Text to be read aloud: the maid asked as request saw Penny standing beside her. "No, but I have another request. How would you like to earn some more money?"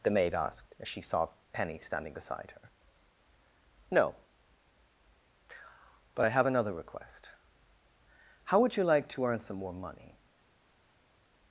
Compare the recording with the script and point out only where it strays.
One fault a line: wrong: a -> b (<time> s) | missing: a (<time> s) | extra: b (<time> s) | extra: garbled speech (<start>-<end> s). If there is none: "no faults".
wrong: request -> she (0.9 s)